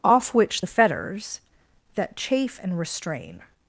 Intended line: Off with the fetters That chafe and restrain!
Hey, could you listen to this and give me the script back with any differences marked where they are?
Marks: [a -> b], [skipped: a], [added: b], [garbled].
Off [with -> which] the fetters That chafe and restrain!